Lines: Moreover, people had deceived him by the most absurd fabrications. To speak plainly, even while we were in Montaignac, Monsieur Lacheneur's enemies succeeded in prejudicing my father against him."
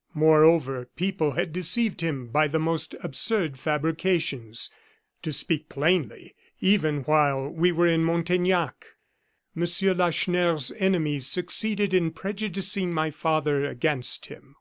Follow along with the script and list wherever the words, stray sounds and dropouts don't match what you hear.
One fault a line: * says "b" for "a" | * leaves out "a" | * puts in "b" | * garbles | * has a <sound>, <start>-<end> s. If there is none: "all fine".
all fine